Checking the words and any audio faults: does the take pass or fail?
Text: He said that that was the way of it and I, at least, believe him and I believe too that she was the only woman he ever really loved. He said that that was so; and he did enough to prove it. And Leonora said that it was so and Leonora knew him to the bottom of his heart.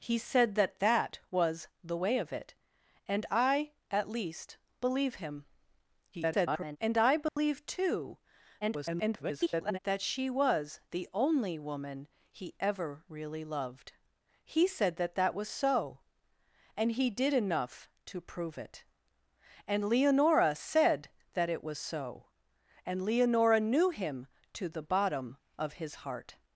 fail